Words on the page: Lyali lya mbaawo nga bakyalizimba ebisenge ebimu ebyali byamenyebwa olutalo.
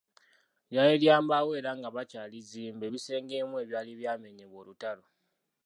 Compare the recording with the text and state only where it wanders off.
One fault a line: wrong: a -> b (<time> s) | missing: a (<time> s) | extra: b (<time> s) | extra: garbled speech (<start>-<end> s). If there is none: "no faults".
extra: era (1.6 s)